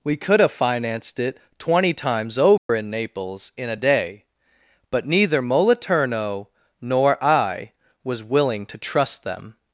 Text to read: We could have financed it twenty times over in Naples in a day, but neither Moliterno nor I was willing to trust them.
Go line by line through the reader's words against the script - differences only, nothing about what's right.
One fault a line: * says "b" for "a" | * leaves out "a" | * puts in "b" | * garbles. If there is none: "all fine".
all fine